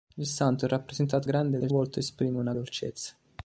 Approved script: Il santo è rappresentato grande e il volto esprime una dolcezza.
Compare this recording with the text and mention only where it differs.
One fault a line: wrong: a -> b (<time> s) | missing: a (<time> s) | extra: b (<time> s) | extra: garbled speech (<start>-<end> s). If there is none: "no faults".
no faults